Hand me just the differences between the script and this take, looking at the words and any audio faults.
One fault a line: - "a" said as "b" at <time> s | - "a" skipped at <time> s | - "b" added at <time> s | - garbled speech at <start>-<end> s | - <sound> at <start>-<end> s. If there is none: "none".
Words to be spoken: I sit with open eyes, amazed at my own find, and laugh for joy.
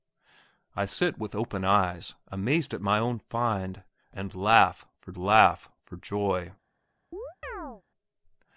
- "laugh for" added at 5.1 s
- chirp at 7.1-7.8 s